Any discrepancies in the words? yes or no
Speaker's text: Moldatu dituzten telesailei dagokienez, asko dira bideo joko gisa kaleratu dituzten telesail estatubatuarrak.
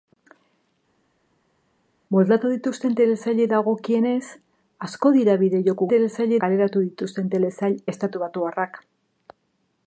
yes